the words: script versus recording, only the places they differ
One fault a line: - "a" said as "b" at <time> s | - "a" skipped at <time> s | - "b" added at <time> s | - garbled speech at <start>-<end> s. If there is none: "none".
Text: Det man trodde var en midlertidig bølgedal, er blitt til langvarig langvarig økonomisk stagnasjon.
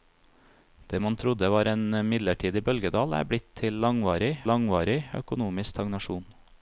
none